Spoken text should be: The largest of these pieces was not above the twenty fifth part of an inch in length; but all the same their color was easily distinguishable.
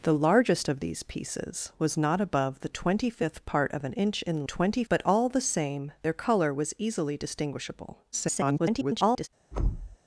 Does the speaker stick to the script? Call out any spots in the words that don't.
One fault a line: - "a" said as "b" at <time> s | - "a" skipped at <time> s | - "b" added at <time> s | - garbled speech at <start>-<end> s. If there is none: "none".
- "length" said as "twenty" at 4.4 s
- garbled speech at 8.1-9.3 s